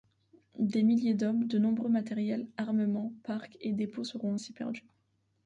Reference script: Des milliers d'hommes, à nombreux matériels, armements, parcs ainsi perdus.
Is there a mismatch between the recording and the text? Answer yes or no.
yes